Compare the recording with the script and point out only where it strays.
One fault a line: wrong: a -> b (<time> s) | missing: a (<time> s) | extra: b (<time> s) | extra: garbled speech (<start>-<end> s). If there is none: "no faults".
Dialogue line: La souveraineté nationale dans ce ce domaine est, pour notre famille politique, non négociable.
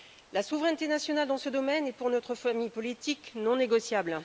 missing: ce (1.5 s)